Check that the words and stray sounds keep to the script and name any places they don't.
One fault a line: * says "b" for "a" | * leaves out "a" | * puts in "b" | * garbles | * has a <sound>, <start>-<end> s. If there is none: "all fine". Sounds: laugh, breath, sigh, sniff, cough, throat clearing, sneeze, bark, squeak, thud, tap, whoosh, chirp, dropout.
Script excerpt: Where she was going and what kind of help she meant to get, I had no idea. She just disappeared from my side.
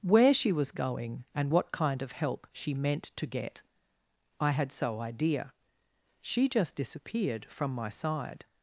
* says "so" for "no"